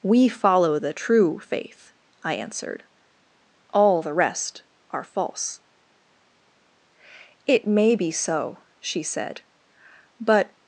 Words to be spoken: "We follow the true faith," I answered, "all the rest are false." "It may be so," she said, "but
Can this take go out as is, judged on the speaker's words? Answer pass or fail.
pass